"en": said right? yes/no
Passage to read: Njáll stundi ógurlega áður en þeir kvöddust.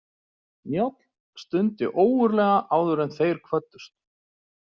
yes